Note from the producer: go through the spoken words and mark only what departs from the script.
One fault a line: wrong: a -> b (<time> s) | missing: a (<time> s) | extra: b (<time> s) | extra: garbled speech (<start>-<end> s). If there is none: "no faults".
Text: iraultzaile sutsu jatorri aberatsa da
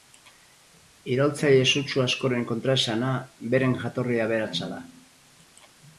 extra: askoren kontraesana beren (2.0 s)